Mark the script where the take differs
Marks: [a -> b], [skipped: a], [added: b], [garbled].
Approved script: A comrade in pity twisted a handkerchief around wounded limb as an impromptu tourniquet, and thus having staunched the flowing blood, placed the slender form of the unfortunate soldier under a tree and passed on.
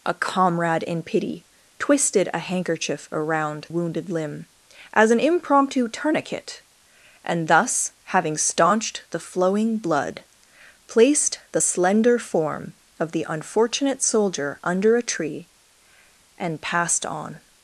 A comrade in pity twisted a handkerchief around wounded limb as an impromptu tourniquet, and thus having staunched the flowing blood, placed the slender form of the unfortunate soldier under a tree and passed on.